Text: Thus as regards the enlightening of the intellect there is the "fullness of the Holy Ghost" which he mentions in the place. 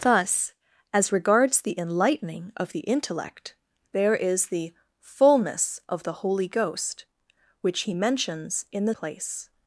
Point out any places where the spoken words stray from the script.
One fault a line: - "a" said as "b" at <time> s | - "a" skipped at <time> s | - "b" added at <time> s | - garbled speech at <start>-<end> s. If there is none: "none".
none